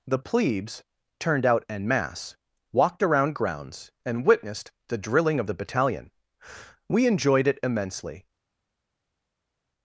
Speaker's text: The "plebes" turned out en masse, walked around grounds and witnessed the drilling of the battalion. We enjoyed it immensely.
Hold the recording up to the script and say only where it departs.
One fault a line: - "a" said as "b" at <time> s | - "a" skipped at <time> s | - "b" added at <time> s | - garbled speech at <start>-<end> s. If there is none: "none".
none